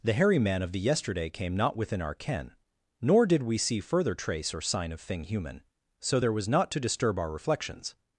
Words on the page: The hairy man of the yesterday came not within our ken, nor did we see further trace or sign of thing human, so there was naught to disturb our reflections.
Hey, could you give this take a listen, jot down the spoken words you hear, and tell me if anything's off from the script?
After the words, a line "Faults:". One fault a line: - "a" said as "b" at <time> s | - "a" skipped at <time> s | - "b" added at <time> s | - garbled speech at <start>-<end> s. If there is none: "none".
The hairy man of the yesterday came not within our ken, nor did we see further trace or sign of thing human, so there was naught to disturb our reflections.
Faults:
none